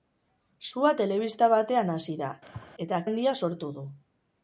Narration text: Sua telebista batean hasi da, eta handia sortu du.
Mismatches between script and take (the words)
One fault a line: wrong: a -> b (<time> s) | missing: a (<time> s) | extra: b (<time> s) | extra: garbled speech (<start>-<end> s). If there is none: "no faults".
no faults